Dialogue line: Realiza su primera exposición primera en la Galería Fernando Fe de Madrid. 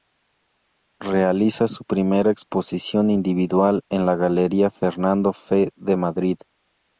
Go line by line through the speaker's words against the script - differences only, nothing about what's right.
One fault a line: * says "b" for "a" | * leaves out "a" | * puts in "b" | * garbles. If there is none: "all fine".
* says "individual" for "primera"